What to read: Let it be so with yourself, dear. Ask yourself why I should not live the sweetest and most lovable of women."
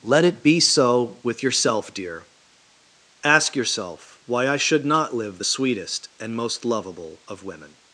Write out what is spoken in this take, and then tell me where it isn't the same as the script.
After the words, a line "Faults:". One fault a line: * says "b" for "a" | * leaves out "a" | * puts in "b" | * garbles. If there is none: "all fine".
Let it be so with yourself, dear. Ask yourself why I should not live the sweetest and most lovable of women."
Faults:
all fine